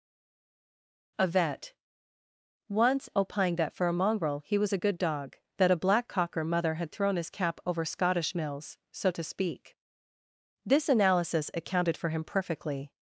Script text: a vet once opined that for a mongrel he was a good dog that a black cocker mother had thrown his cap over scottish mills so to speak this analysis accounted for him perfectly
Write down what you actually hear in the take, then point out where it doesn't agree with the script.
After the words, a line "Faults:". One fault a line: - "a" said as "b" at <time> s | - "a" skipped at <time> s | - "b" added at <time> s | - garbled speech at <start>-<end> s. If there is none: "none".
a vet once opined that for a mongrel he was a good dog that a black cocker mother had thrown his cap over scottish mills so to speak this analysis accounted for him perfectly
Faults:
none